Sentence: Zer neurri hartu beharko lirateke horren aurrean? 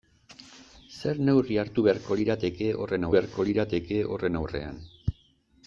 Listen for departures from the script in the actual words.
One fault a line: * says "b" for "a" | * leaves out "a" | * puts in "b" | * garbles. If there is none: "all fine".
* puts in "beharko lirateke horren"